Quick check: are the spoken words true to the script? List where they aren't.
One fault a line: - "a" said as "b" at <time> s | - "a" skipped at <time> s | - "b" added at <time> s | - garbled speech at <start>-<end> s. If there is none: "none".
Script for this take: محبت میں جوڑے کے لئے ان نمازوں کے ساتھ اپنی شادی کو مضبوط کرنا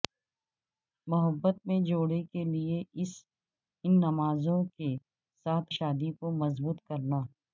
- "اپنی" skipped at 5.7 s